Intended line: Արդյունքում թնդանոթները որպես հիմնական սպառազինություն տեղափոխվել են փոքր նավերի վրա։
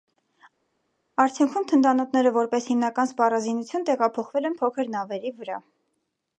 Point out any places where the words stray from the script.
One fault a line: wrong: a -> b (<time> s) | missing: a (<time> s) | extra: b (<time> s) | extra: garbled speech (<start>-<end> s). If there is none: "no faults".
no faults